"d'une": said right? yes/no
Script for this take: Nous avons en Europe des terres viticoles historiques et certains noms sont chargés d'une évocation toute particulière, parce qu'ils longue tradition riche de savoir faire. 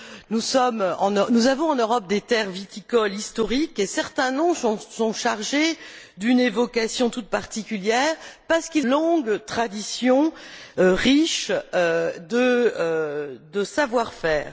yes